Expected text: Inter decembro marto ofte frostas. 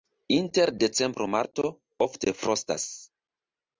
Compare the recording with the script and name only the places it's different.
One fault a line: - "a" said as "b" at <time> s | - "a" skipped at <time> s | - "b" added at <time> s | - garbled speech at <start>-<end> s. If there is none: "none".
none